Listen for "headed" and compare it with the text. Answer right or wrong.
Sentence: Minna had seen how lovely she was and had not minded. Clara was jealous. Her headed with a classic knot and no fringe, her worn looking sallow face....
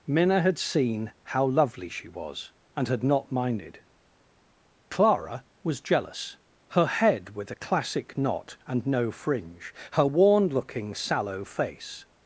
wrong